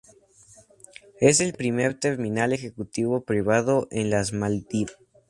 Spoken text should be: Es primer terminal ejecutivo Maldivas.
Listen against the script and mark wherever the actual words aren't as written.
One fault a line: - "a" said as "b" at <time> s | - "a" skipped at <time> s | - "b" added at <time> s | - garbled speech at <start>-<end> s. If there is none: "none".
- "el" added at 1.4 s
- "privado en las" added at 3.2 s